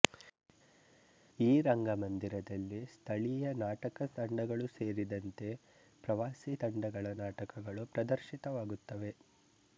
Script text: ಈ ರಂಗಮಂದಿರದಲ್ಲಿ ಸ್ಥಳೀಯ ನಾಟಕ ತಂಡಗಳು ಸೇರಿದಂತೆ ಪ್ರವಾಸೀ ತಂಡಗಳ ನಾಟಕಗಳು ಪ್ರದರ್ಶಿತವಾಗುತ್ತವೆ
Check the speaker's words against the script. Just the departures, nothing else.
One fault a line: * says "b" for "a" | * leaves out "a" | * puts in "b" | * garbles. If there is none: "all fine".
all fine